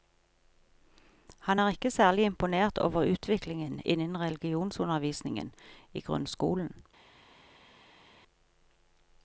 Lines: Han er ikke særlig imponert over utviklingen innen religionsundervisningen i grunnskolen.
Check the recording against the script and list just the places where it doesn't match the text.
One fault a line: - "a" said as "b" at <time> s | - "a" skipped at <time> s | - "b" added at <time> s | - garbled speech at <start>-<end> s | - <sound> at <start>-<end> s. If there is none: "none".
none